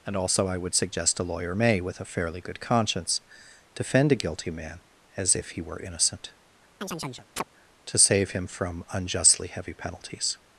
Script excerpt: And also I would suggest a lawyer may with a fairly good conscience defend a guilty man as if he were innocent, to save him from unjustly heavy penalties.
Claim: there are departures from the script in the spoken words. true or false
false